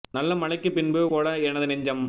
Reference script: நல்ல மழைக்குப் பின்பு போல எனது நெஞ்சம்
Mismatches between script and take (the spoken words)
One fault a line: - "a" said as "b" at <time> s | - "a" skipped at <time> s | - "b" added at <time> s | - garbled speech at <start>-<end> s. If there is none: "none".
none